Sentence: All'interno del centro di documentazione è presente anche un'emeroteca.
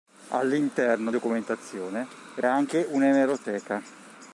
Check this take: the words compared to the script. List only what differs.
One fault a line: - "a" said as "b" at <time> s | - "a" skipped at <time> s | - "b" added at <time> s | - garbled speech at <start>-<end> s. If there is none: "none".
- "del centro di" skipped at 1.1 s
- "presente" skipped at 2.4 s